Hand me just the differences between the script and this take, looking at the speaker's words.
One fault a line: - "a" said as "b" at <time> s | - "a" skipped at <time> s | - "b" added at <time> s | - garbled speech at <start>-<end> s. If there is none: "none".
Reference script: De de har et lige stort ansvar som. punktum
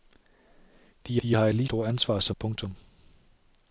none